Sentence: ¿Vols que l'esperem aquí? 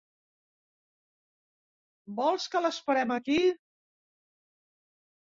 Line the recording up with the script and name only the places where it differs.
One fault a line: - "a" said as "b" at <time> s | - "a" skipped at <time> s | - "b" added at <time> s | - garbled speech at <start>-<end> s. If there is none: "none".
none